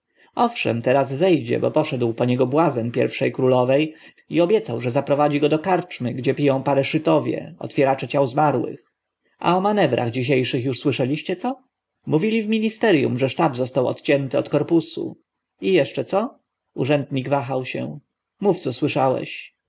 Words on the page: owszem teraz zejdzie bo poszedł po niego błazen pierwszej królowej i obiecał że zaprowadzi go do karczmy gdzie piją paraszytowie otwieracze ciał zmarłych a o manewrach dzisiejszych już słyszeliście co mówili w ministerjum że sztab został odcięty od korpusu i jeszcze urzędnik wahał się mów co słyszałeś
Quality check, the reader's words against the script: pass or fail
fail